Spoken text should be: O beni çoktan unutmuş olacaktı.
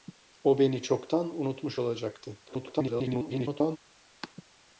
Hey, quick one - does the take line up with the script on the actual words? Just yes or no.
no